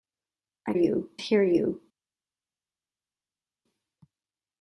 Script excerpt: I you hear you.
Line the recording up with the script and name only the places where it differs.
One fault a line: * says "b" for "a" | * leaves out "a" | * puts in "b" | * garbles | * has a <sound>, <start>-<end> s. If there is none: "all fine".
all fine